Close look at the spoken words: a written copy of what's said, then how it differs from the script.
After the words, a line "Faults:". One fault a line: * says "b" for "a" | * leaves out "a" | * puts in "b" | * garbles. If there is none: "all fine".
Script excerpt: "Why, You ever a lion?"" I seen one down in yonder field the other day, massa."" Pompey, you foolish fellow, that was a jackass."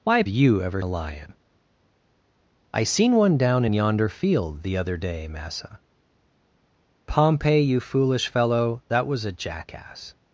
"Why, You ever a lion?"" I seen one down in yonder field the other day, massa."" Pompey, you foolish fellow, that was a jackass."
Faults:
all fine